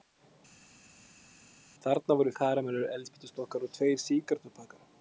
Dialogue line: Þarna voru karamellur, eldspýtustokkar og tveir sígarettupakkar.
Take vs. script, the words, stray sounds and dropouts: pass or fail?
pass